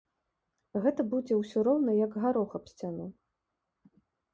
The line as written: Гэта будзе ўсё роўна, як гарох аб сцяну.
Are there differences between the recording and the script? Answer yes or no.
no